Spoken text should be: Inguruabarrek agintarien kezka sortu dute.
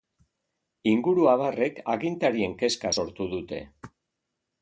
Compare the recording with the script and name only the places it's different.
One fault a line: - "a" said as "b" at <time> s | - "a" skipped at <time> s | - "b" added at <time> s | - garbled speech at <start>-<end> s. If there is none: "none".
none